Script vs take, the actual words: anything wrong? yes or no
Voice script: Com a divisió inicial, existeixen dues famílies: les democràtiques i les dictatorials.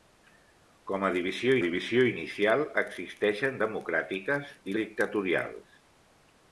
yes